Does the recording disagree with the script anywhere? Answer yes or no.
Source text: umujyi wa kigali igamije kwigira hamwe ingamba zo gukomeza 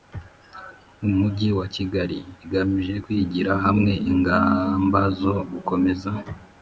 no